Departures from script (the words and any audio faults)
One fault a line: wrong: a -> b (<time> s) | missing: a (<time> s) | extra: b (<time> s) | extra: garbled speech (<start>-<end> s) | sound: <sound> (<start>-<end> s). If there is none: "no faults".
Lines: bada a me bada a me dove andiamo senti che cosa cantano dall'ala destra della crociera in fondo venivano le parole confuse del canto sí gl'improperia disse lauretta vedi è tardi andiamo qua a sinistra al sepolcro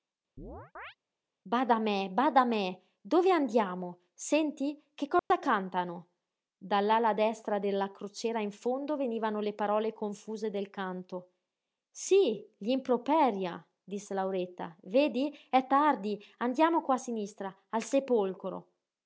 sound: chirp (0.4-1.0 s)
sound: dropout (5.2-5.3 s)